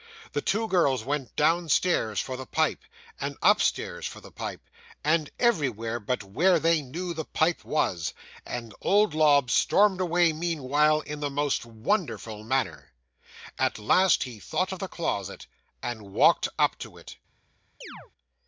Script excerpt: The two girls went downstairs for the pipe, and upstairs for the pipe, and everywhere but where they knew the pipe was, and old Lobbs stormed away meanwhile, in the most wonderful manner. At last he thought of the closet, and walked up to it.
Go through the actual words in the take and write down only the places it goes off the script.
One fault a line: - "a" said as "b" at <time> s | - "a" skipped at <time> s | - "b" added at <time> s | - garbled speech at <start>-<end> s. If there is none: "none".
none